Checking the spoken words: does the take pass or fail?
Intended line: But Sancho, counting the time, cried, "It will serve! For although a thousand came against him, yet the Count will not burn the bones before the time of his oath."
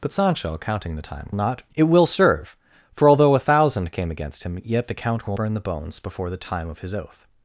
fail